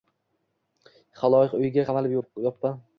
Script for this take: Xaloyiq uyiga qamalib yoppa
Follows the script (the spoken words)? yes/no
yes